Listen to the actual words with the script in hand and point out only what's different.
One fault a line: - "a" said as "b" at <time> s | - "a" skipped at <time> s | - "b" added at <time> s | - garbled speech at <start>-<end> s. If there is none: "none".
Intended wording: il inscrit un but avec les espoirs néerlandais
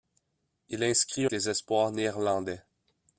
- "un but avec" skipped at 1.3 s